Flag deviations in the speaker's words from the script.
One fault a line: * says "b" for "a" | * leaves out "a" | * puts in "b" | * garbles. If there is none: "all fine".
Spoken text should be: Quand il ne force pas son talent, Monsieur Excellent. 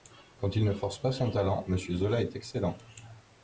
* puts in "Zola est"